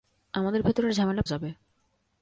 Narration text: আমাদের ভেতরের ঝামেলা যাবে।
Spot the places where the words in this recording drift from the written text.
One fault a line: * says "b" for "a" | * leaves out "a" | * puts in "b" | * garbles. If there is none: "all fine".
all fine